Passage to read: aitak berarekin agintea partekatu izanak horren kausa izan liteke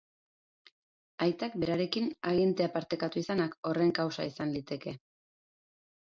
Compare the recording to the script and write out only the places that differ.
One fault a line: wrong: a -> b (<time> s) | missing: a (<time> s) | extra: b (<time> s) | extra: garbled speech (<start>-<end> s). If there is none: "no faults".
no faults